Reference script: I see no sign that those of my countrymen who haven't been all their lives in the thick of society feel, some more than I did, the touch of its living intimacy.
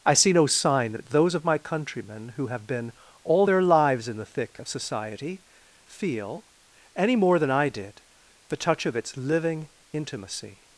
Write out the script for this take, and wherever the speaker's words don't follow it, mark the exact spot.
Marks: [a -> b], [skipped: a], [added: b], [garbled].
I see no sign that those of my countrymen who [haven't -> have] been all their lives in the thick of society feel, [some -> any] more than I did, the touch of its living intimacy.